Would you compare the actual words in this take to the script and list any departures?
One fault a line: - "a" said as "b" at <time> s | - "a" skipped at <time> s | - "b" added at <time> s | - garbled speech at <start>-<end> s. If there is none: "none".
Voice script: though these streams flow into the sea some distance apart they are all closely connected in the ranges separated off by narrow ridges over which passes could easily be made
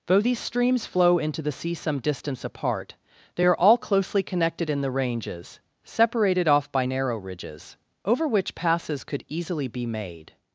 none